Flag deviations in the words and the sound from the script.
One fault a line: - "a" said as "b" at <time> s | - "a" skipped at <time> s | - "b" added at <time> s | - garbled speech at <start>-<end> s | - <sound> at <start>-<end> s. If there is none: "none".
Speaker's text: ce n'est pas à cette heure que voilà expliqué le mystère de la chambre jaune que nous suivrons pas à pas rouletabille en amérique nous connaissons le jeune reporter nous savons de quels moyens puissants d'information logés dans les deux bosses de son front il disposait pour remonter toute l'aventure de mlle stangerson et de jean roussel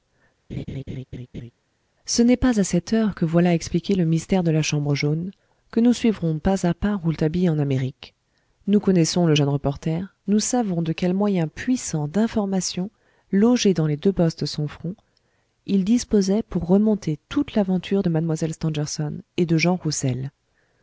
- laugh at 0.5-1.5 s